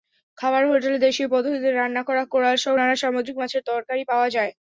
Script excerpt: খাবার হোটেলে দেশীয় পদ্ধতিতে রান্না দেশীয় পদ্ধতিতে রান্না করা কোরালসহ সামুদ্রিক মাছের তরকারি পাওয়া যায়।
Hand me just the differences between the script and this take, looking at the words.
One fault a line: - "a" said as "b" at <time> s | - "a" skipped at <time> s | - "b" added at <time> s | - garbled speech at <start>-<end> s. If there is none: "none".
- "দেশীয় পদ্ধতিতে রান্না" skipped at 2.0 s
- "নানা" added at 2.7 s